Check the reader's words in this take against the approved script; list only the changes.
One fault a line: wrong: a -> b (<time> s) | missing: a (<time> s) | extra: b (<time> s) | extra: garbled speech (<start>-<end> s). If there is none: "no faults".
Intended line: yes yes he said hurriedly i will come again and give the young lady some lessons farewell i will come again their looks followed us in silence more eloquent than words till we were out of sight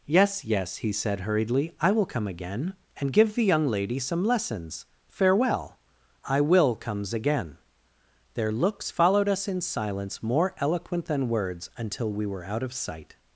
wrong: come -> comes (6.8 s)
wrong: till -> until (11.8 s)